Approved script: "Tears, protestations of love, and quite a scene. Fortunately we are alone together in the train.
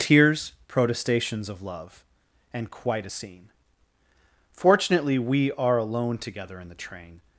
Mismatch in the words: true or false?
false